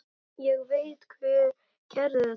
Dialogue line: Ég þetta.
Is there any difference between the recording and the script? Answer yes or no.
yes